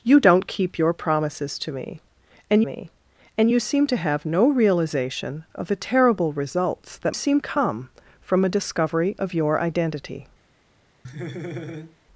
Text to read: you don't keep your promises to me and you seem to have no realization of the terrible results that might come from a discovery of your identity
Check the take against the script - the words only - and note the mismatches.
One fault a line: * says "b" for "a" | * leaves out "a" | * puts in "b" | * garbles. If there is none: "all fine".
* puts in "me and"
* says "seem" for "might"